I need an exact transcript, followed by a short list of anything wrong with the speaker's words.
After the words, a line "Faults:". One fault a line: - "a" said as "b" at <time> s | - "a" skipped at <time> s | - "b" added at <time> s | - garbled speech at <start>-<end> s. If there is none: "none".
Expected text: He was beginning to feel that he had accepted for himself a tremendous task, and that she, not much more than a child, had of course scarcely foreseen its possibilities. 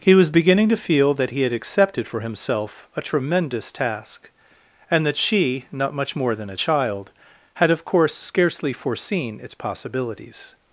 He was beginning to feel that he had accepted for himself a tremendous task, and that she, not much more than a child, had of course scarcely foreseen its possibilities.
Faults:
none